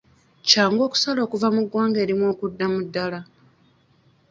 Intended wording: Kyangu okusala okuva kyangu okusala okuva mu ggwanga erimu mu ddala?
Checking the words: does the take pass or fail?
fail